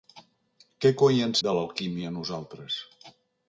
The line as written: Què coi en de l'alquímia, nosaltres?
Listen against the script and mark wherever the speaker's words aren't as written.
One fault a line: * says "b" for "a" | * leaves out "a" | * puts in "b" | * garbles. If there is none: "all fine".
all fine